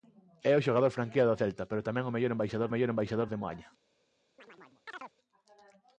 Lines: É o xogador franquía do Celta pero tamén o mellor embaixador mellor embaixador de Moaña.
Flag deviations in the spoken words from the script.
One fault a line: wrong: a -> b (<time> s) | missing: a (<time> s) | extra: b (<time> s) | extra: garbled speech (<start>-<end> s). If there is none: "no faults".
no faults